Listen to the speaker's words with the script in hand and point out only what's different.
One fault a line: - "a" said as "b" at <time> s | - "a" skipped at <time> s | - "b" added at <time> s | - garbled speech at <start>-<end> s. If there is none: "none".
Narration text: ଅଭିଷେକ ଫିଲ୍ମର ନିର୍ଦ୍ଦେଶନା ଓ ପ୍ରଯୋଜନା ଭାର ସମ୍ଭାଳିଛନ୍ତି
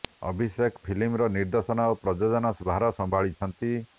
none